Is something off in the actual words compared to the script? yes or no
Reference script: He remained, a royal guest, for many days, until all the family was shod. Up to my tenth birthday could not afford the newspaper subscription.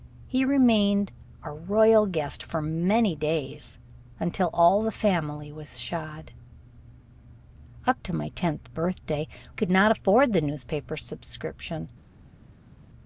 no